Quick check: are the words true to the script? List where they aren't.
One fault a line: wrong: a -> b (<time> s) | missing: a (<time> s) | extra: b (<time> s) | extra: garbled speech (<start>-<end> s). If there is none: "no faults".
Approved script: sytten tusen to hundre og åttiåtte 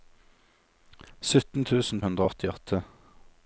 missing: to (2.0 s)